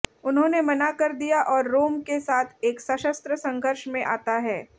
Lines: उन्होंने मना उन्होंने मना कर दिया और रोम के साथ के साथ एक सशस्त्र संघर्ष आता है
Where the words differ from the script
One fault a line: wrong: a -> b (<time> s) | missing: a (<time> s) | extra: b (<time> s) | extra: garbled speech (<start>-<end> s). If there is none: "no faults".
missing: उन्होंने मना (0.9 s)
missing: के साथ (2.6 s)
extra: में (3.9 s)